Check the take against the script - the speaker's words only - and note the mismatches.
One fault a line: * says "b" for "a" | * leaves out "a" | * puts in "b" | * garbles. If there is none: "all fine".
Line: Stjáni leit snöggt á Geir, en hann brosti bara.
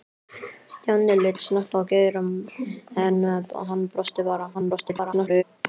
* garbles